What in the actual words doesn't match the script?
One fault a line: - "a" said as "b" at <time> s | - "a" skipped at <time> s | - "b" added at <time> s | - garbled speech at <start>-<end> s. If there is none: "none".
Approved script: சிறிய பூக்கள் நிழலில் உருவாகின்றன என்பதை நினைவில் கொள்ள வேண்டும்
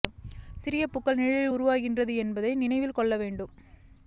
none